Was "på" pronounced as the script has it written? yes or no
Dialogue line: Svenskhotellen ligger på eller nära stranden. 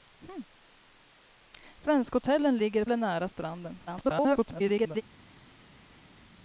no